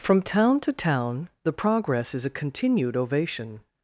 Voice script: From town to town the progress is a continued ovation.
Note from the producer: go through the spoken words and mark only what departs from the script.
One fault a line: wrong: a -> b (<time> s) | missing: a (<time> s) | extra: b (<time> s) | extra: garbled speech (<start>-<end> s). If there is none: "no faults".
no faults